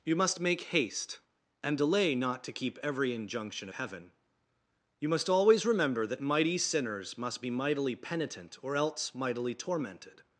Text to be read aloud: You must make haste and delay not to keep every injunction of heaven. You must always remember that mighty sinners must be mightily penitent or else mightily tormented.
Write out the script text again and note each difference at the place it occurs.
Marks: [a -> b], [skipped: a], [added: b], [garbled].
You must make haste and delay not to keep every injunction [skipped: of] heaven. You must always remember that mighty sinners must be mightily penitent or else mightily tormented.